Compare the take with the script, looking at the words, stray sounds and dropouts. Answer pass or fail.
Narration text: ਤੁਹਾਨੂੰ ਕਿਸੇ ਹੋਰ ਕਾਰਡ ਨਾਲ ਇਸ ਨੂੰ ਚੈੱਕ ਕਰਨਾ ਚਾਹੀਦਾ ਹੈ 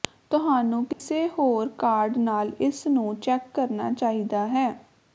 fail